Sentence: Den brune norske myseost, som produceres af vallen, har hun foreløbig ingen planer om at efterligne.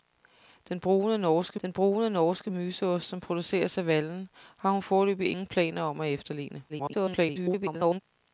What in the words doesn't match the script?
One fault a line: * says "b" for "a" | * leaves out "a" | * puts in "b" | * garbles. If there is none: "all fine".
* puts in "den brune norske"
* garbles